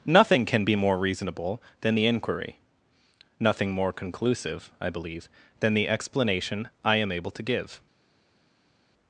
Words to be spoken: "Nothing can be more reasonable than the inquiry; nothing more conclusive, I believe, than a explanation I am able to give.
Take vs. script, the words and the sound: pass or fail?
fail